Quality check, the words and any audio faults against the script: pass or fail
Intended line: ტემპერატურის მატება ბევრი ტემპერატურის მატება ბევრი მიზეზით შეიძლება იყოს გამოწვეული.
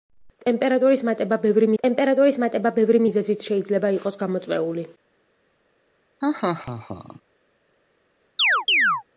fail